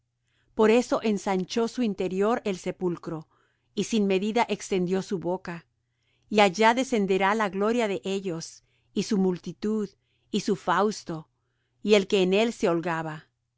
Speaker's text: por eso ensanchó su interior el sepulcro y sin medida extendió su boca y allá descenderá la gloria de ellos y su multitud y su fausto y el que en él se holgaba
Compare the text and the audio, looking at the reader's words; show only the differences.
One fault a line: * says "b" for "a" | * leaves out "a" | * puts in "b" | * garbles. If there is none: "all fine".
all fine